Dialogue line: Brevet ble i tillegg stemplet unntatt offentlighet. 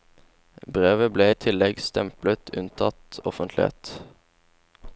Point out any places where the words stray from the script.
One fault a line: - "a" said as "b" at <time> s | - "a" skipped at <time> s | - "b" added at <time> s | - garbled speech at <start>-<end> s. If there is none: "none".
none